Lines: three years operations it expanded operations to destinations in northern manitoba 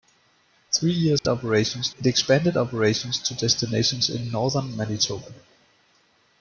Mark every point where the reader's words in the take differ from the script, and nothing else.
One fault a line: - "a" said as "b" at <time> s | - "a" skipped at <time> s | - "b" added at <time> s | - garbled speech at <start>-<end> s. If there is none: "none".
none